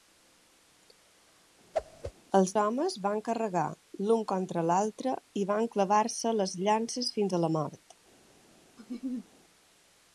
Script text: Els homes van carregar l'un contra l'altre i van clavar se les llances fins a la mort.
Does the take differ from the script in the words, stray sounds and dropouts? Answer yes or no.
yes